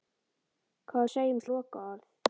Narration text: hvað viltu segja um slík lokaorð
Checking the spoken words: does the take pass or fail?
fail